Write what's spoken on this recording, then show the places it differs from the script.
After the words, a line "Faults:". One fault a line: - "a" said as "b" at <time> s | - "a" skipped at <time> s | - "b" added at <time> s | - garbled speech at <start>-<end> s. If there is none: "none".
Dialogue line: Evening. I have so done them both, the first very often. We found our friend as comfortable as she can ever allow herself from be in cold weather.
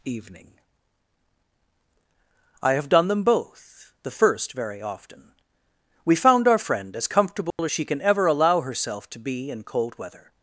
Evening. I have done them both, the first very often. We found our friend as comfortable as she can ever allow herself to be in cold weather.
Faults:
- "so" skipped at 2.9 s
- "from" said as "to" at 9.1 s